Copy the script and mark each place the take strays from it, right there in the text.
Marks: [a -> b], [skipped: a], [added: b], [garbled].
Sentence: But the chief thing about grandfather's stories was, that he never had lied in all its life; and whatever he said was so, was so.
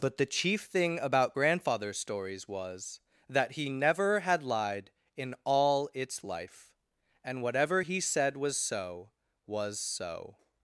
But the chief thing about grandfather's stories was, that he never had lied in all its life; and whatever he said was so, was so.